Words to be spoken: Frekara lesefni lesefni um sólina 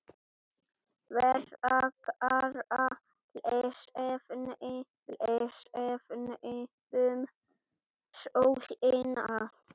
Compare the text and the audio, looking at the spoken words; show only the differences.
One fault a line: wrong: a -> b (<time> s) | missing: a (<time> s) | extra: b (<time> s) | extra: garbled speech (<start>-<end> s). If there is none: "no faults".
no faults